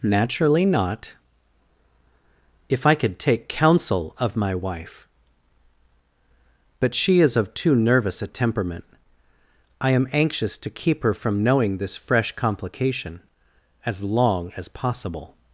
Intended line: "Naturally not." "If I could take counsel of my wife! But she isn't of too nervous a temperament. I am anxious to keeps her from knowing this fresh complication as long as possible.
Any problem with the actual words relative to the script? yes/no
yes